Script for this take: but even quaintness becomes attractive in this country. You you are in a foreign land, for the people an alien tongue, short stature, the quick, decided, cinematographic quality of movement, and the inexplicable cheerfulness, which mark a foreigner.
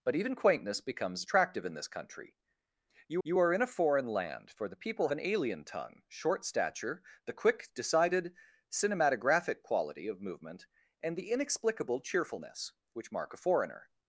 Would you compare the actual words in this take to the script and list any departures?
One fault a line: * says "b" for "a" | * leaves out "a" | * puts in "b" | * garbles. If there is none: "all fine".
all fine